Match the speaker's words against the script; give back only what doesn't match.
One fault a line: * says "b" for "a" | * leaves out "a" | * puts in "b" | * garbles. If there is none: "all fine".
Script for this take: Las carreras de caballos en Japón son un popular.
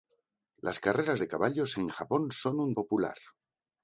all fine